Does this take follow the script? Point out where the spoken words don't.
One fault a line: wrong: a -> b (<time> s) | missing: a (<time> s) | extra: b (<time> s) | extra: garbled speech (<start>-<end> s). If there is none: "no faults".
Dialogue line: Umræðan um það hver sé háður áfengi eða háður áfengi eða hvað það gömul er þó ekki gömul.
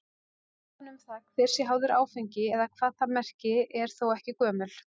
missing: háður áfengi eða (2.7 s)
wrong: gömul -> merki (3.2 s)